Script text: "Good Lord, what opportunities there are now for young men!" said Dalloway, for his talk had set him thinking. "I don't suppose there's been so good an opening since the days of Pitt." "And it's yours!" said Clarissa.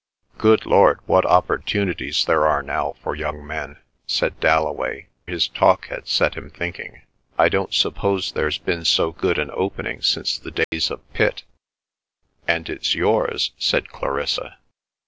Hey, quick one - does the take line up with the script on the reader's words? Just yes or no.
no